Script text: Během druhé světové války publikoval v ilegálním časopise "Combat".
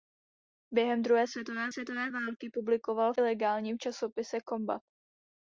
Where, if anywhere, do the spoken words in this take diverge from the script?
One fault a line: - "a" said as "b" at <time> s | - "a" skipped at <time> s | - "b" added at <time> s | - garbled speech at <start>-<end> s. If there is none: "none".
- "světové" added at 1.7 s
- "v" skipped at 3.1 s